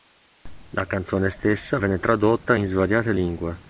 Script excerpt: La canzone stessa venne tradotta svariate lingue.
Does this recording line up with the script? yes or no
no